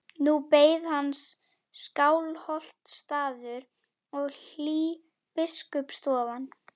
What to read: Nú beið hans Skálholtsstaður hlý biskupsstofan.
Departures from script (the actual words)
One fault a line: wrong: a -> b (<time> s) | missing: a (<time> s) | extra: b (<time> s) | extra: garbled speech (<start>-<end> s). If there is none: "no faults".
extra: og (4.2 s)